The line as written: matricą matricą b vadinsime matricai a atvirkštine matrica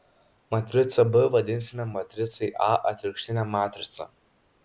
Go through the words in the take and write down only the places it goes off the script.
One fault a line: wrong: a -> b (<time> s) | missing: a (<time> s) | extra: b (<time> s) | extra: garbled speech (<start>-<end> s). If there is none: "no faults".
missing: matricą (1.0 s)